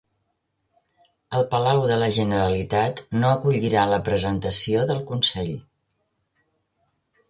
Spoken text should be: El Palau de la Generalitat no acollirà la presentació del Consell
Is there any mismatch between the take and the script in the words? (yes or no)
no